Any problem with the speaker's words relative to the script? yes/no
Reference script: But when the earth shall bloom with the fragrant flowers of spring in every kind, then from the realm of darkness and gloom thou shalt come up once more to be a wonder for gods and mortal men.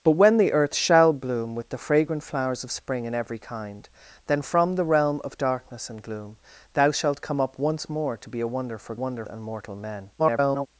yes